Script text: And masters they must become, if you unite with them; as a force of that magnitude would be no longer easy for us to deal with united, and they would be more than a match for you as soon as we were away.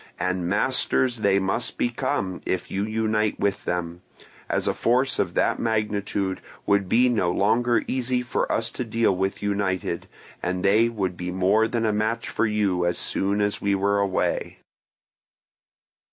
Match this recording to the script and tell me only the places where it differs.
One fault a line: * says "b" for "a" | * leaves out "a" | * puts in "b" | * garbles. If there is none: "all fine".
all fine